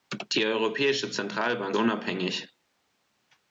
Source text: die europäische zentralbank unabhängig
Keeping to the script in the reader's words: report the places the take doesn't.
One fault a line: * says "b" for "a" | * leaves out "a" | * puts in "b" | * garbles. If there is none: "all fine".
all fine